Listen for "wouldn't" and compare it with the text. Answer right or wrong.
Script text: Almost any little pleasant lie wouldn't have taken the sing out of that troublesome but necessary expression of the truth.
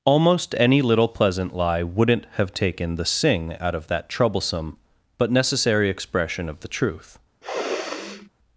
right